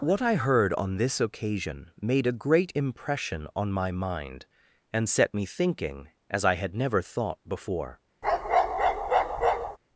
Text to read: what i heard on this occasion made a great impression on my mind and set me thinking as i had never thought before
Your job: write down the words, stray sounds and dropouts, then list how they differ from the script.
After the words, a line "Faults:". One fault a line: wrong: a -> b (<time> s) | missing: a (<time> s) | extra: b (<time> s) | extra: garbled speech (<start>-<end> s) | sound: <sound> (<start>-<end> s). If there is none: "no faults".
what i heard on this occasion made a great impression on my mind and set me thinking as i had never thought before
Faults:
sound: bark (8.2-9.8 s)